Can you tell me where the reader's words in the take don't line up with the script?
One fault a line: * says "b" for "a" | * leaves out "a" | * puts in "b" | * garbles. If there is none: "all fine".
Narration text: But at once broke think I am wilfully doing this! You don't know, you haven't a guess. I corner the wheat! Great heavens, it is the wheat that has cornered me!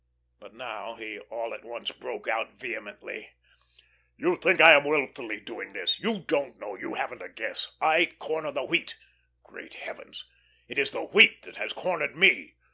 * puts in "now he all"
* puts in "out vehemently You"